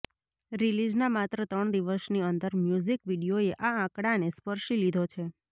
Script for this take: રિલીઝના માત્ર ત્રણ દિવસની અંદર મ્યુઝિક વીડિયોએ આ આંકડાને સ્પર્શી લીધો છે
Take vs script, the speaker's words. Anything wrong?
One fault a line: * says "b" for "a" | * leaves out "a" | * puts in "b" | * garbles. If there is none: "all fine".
all fine